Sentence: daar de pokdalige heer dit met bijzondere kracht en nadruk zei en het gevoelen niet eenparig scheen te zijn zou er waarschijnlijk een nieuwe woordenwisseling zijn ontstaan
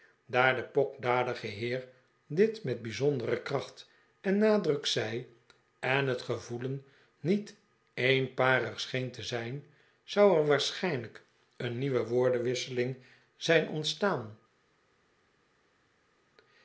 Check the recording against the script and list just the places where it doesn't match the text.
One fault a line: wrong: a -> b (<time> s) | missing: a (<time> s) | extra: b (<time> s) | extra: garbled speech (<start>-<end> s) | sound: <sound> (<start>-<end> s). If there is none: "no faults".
no faults